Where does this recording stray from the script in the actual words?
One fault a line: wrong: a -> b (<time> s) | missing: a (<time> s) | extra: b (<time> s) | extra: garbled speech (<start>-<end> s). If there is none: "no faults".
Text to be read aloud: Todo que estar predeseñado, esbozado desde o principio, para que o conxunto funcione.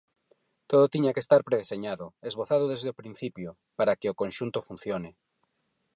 extra: tiña (0.9 s)